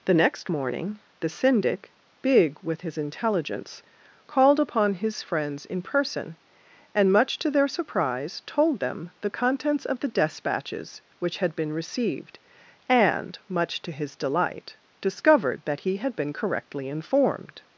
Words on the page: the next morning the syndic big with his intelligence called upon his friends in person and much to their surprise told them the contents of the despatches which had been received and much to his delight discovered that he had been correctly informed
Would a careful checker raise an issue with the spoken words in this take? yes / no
no